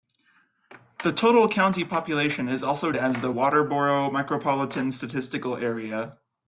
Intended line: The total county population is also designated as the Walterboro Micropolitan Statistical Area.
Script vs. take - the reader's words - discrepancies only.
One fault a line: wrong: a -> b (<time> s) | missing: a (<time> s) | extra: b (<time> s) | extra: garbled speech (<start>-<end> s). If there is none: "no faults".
missing: designated (2.9 s)